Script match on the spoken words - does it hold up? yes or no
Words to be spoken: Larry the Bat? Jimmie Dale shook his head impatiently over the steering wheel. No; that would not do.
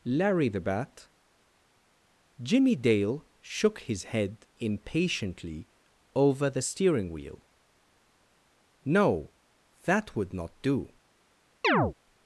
yes